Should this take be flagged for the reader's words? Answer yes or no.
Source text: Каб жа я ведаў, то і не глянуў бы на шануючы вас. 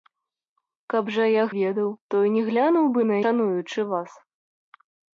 no